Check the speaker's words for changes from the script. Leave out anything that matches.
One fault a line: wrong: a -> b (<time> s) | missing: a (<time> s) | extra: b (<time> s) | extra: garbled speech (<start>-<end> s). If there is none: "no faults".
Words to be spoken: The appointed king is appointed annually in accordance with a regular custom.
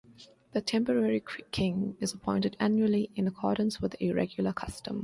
wrong: appointed -> temporary (0.6 s)